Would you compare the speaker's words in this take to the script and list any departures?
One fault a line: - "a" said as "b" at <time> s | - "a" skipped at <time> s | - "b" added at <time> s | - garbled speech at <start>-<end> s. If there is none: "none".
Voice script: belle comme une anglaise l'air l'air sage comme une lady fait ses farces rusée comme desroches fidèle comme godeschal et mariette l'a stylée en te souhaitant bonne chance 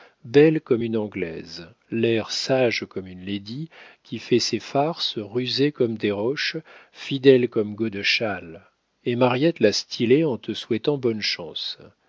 - "l'air" skipped at 2.3 s
- "qui" added at 4.0 s